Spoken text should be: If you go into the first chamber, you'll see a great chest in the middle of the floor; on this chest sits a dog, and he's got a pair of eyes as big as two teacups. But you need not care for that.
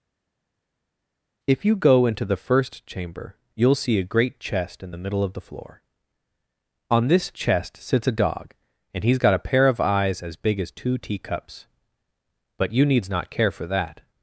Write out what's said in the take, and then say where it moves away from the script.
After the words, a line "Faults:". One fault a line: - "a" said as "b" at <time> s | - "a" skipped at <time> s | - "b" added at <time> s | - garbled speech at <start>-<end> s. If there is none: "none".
If you go into the first chamber, you'll see a great chest in the middle of the floor; on this chest sits a dog, and he's got a pair of eyes as big as two teacups. But you needs not care for that.
Faults:
- "need" said as "needs" at 12.8 s